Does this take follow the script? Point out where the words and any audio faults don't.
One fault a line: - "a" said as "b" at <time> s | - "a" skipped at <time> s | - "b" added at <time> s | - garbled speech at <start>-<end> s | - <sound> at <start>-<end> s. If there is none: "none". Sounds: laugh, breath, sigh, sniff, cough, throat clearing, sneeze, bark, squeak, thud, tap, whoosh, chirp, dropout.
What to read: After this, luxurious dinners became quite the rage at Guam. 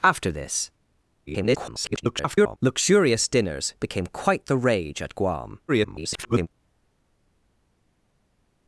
- garbled speech at 1.3-2.6 s
- garbled speech at 5.7-6.5 s